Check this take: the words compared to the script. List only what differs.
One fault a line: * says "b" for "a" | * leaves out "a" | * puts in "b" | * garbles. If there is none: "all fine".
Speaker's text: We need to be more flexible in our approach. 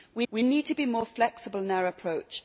* puts in "we"